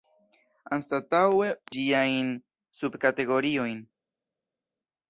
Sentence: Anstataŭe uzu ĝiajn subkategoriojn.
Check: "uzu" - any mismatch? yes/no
yes